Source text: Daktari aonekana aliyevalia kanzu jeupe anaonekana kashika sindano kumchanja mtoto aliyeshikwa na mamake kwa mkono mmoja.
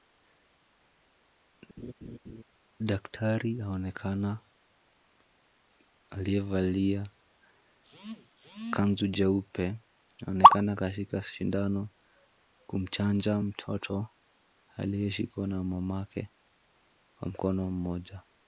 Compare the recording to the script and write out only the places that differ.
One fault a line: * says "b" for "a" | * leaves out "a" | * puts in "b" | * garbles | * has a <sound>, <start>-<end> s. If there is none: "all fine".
* has a laugh, 1.8-2.4 s